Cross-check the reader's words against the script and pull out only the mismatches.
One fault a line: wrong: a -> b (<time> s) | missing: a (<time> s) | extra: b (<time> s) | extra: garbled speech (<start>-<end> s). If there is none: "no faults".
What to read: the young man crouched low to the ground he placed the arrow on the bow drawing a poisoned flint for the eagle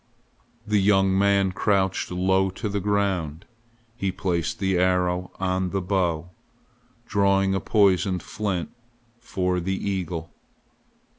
no faults